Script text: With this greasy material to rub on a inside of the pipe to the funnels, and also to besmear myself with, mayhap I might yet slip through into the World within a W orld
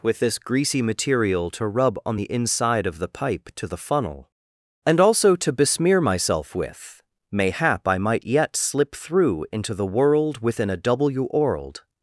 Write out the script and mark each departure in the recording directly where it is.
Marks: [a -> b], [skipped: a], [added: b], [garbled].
With this greasy material to rub on [a -> the] inside of the pipe to the [funnels, -> funnel] and also to besmear myself with, mayhap I might yet slip through into the World within a W orld